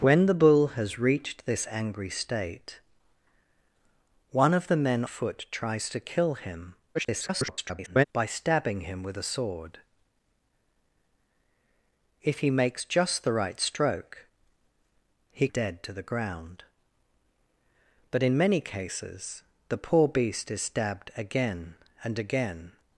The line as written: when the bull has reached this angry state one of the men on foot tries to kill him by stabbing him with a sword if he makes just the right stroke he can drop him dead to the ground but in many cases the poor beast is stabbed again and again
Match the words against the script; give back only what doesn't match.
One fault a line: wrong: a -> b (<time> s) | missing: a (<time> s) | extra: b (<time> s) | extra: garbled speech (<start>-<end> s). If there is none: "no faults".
missing: on (5.0 s)
extra: garbled speech (6.9-8.1 s)
missing: can drop him (15.5 s)